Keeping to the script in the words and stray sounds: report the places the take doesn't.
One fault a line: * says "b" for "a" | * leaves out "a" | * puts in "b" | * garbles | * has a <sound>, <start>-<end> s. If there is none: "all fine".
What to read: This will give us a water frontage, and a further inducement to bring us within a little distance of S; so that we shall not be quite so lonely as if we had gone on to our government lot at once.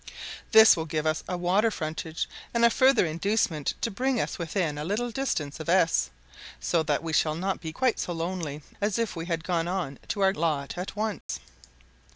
* leaves out "government"
* has a dropout, 11.2-11.3 s